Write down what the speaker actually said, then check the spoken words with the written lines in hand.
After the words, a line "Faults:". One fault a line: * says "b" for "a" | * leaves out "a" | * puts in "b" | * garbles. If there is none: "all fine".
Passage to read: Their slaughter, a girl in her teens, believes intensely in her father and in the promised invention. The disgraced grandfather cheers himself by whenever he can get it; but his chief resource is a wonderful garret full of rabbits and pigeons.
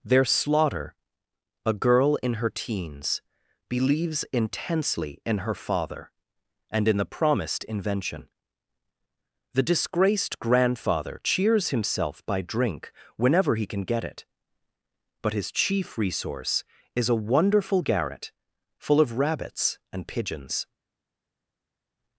Their slaughter, a girl in her teens, believes intensely in her father and in the promised invention. The disgraced grandfather cheers himself by drink whenever he can get it; but his chief resource is a wonderful garret full of rabbits and pigeons.
Faults:
* puts in "drink"